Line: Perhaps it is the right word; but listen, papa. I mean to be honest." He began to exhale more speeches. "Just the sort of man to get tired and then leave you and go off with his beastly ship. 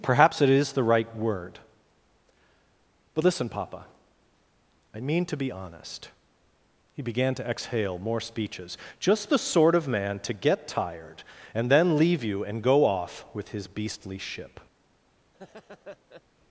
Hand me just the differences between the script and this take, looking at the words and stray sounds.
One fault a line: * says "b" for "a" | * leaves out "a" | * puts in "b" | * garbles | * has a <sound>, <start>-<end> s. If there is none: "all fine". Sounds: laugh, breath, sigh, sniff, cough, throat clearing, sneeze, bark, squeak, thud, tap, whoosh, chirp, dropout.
* has a laugh, 15.3-16.2 s